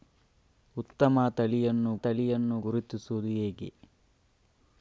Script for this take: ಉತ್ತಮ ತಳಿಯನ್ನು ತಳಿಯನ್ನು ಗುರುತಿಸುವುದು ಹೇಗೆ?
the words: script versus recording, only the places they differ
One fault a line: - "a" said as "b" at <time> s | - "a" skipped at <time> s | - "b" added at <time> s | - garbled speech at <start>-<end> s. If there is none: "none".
none